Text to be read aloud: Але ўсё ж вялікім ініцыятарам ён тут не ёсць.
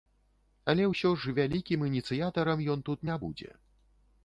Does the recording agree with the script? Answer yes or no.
no